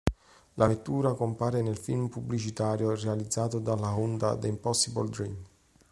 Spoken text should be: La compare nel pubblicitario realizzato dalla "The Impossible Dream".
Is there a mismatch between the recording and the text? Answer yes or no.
yes